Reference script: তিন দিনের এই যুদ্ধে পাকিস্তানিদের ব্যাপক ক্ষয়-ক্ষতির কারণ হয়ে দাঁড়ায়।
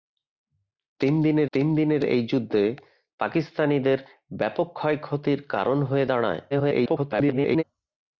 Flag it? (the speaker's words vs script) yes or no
yes